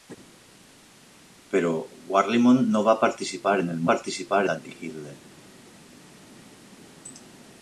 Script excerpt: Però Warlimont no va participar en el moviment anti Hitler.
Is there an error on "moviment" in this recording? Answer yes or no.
yes